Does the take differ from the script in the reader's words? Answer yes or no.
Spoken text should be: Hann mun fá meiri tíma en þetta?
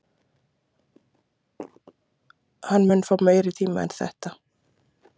no